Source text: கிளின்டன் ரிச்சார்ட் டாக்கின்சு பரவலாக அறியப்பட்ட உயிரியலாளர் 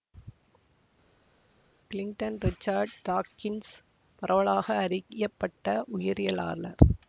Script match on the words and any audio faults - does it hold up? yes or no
yes